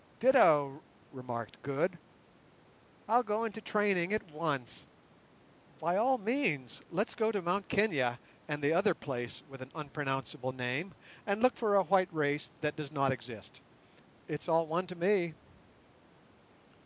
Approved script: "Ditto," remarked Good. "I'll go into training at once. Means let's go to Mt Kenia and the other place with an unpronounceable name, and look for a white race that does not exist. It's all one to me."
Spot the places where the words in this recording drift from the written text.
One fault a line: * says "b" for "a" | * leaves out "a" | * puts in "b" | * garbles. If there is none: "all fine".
* puts in "By all"